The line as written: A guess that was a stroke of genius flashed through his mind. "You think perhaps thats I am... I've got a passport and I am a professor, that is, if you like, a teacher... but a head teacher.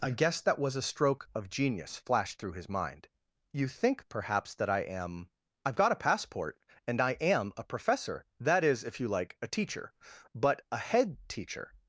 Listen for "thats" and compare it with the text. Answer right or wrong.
wrong